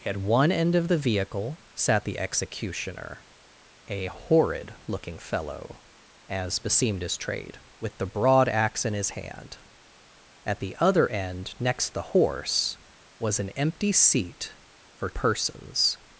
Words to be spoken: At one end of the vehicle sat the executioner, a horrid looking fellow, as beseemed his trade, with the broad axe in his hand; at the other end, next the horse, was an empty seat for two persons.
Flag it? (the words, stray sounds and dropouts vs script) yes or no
yes